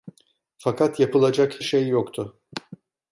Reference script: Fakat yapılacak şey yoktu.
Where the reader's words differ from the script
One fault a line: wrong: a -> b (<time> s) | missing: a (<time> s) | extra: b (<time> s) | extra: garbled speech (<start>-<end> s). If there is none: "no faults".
no faults